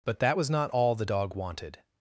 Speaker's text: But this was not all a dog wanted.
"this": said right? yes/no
no